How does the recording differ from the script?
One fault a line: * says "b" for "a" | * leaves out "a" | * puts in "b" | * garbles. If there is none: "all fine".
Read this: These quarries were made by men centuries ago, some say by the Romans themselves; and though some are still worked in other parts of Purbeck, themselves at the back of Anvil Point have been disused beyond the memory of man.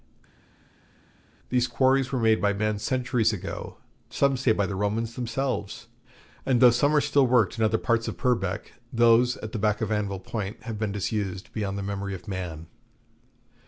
* says "those" for "themselves"